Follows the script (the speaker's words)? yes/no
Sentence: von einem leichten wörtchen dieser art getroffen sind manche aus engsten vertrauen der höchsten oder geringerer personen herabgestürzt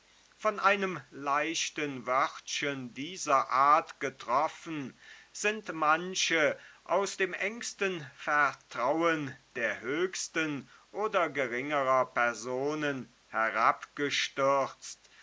no